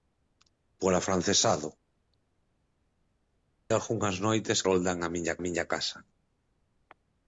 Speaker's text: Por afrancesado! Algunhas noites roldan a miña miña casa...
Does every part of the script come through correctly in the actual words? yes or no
yes